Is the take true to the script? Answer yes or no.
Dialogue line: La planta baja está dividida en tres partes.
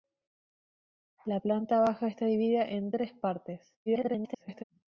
no